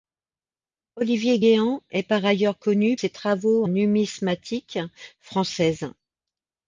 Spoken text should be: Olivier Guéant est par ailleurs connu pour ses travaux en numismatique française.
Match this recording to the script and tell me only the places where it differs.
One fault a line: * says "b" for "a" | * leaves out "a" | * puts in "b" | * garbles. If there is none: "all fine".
* leaves out "pour"
* leaves out "en"